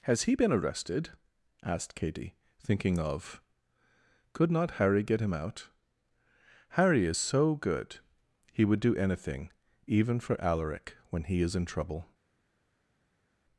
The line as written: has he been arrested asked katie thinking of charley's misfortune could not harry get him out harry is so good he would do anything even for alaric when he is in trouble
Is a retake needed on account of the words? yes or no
yes